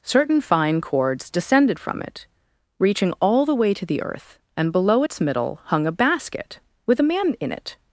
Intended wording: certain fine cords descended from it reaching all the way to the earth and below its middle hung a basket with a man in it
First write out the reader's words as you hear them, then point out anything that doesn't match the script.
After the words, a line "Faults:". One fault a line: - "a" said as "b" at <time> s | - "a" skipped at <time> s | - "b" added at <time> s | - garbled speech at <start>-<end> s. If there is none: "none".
certain fine cords descended from it reaching all the way to the earth and below its middle hung a basket with a man in it
Faults:
none